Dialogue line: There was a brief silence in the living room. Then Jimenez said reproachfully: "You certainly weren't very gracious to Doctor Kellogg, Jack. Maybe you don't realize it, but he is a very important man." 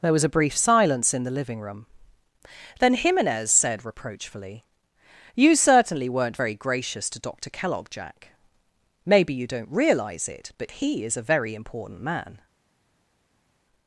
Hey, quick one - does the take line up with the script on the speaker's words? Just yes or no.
yes